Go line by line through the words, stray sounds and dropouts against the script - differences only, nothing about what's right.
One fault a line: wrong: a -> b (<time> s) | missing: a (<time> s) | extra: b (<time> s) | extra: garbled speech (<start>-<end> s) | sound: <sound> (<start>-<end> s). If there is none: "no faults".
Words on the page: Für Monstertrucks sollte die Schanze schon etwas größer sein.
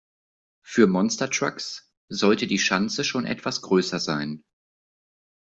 no faults